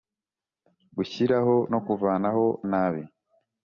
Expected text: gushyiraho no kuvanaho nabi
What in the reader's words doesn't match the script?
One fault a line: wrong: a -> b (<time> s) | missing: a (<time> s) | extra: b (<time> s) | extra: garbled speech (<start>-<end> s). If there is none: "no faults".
no faults